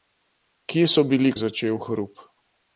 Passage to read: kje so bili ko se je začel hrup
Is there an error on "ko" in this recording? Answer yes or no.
yes